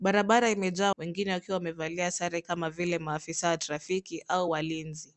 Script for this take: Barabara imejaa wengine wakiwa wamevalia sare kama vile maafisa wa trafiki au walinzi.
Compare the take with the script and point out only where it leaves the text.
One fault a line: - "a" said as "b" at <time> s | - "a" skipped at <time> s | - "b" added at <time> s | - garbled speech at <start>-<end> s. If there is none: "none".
none